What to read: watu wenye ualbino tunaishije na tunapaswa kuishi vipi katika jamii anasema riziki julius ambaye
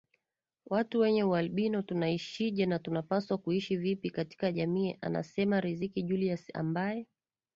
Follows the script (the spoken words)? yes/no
yes